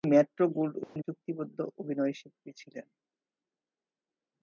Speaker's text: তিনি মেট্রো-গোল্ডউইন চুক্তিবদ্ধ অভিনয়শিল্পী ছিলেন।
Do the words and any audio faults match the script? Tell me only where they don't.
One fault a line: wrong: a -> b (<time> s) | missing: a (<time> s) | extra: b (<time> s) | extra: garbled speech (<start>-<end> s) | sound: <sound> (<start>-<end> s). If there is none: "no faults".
sound: dropout (0.8-1.0 s)